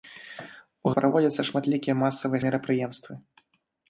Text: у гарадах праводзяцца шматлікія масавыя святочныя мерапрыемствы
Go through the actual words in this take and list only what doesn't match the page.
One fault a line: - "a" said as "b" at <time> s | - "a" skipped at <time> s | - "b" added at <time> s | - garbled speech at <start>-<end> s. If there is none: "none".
- "гарадах" skipped at 0.9 s
- "святочныя" skipped at 2.4 s